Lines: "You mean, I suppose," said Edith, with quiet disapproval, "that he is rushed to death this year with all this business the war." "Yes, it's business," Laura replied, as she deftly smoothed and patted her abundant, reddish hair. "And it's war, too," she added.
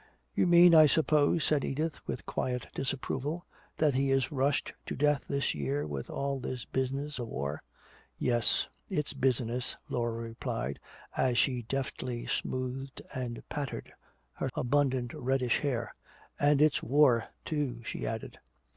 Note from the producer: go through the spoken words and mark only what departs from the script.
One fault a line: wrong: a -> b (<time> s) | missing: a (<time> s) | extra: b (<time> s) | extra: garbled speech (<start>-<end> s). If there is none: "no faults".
no faults